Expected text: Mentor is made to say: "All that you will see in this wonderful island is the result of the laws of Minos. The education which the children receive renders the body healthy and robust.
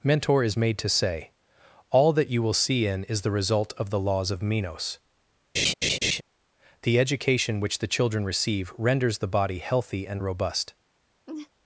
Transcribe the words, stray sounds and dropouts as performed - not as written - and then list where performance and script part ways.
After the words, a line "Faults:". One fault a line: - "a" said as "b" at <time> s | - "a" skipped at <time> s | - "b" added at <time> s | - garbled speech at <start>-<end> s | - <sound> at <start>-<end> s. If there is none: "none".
Mentor is made to say: "All that you will see in is the result of the laws of Minos. The education which the children receive renders the body healthy and robust.
Faults:
- "this wonderful island" skipped at 3.0 s
- laugh at 5.6-6.2 s
- laugh at 11.3-11.5 s